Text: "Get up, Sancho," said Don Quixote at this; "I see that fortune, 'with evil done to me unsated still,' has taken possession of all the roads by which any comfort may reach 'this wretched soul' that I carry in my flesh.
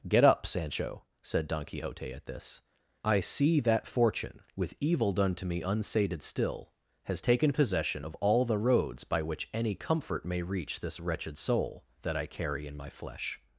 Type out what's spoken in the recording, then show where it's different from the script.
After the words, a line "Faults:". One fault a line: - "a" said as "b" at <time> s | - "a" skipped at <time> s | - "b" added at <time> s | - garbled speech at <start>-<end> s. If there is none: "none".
"Get up, Sancho," said Don Quixote at this; "I see that fortune, 'with evil done to me unsated still,' has taken possession of all the roads by which any comfort may reach 'this wretched soul' that I carry in my flesh.
Faults:
none